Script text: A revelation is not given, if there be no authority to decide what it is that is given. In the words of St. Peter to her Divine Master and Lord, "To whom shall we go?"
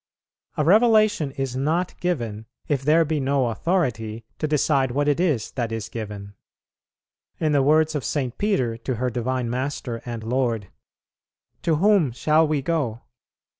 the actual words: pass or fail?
pass